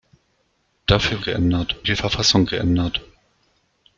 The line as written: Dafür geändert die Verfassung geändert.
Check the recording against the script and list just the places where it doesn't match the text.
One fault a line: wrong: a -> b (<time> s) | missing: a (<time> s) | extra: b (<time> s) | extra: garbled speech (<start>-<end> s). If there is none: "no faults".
no faults